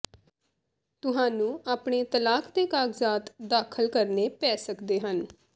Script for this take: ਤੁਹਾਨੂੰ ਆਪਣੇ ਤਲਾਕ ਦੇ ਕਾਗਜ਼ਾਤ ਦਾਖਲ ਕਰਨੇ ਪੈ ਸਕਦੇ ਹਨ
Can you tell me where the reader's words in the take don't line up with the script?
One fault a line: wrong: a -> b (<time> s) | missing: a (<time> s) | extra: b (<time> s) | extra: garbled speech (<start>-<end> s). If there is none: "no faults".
no faults